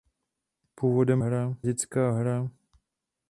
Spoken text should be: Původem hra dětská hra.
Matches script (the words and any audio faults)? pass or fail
pass